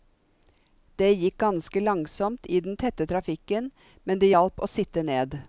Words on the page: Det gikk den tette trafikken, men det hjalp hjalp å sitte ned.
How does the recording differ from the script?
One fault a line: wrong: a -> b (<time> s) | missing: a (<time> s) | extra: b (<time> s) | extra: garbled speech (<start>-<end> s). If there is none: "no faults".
extra: ganske langsomt i (1.4 s)
missing: hjalp (4.6 s)